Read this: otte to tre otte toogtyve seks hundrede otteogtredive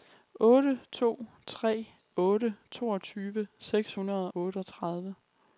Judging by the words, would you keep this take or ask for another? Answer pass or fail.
pass